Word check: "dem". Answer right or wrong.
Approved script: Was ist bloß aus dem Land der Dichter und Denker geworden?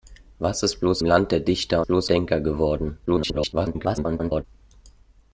wrong